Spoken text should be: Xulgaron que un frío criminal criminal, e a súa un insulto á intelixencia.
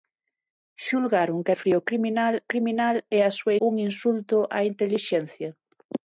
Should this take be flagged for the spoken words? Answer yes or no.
no